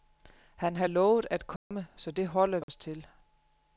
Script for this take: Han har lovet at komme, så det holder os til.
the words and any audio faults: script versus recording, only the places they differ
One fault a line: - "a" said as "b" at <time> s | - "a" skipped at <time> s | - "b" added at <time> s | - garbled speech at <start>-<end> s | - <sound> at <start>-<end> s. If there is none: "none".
- dropout at 1.6-1.7 s
- dropout at 2.6-2.7 s